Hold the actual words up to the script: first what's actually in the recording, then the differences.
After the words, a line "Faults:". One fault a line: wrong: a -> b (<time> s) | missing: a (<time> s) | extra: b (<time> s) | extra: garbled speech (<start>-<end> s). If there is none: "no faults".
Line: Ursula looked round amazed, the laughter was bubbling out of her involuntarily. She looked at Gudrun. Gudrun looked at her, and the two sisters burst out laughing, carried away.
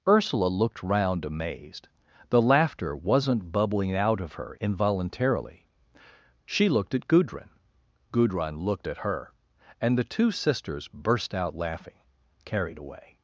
Ursula looked round amazed, the laughter wasn't bubbling out of her involuntarily. She looked at Gudrun. Gudrun looked at her, and the two sisters burst out laughing, carried away.
Faults:
wrong: was -> wasn't (3.0 s)